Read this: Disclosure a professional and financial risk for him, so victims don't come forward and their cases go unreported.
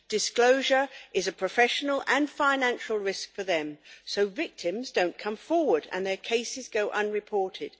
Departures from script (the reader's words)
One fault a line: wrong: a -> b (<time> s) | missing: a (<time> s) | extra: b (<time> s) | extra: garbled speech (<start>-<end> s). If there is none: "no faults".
extra: is (1.1 s)
wrong: him -> them (3.4 s)